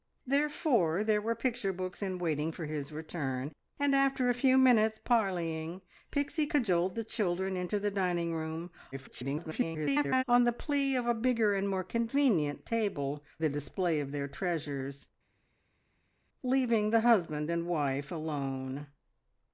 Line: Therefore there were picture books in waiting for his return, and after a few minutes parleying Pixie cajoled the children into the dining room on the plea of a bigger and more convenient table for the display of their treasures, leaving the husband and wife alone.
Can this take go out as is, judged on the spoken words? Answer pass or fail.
fail